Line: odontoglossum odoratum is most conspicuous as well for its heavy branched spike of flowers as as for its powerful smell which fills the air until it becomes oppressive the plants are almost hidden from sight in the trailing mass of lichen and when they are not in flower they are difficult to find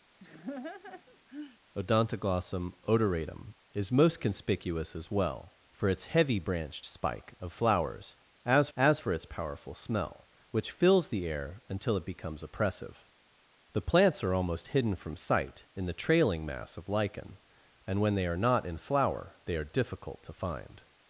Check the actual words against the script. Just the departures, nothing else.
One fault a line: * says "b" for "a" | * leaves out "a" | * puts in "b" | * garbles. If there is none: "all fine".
all fine